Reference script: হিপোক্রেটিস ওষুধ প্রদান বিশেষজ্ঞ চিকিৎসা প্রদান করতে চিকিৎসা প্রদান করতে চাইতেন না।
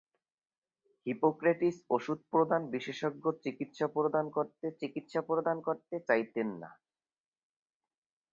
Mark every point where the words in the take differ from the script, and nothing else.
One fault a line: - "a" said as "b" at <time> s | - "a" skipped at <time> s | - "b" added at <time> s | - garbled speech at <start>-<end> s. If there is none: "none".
none